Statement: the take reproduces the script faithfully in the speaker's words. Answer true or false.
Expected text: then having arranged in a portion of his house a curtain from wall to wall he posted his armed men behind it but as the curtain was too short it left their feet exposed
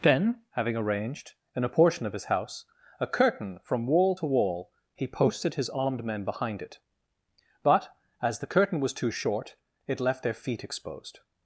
true